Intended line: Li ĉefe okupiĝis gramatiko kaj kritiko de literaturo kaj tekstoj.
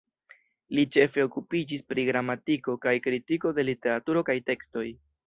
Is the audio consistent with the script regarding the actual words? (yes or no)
no